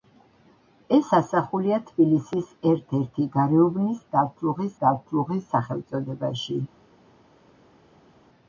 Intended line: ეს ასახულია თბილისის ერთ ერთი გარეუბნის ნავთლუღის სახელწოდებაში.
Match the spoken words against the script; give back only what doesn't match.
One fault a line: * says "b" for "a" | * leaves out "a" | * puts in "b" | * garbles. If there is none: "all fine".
* puts in "ნავთლუღის"